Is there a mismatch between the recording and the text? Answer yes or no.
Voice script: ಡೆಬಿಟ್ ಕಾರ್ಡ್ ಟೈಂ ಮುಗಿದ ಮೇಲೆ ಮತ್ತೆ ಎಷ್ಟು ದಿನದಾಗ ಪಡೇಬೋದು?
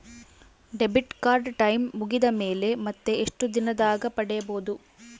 no